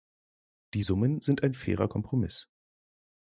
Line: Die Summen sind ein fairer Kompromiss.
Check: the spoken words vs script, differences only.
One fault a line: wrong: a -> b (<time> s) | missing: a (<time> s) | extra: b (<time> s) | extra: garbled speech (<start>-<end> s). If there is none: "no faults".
no faults